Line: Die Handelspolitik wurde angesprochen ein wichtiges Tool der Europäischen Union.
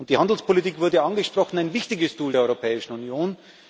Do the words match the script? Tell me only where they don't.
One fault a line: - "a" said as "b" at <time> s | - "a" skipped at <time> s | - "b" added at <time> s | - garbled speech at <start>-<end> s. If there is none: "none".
none